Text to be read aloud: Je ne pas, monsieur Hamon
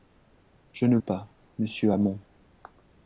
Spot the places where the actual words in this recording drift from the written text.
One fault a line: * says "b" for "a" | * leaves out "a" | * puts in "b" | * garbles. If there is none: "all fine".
all fine